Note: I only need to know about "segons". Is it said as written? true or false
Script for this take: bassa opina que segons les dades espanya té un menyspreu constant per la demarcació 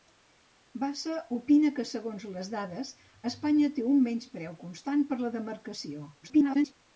true